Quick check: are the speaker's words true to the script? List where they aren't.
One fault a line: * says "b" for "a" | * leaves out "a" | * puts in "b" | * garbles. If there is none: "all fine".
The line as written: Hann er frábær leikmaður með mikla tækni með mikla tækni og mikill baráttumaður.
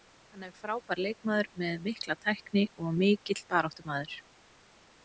* leaves out "með mikla tækni"